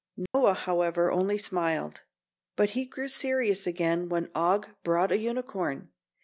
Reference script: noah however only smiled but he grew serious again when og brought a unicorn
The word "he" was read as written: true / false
true